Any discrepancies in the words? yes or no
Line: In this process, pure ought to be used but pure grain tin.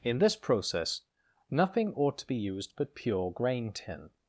yes